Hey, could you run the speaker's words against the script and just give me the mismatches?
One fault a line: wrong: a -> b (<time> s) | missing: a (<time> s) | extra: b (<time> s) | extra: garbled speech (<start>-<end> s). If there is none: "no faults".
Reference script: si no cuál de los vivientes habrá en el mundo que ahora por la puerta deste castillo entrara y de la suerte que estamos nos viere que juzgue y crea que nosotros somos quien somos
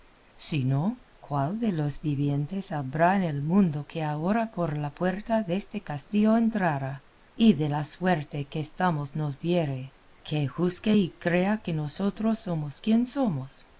no faults